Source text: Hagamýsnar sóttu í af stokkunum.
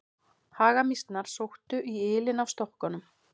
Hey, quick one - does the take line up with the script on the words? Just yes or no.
no